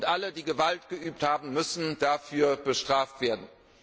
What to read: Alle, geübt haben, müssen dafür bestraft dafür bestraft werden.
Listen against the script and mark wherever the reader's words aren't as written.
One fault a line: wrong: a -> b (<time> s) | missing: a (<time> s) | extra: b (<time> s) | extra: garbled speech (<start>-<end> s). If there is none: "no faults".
extra: die Gewalt (0.3 s)
missing: dafür bestraft (3.2 s)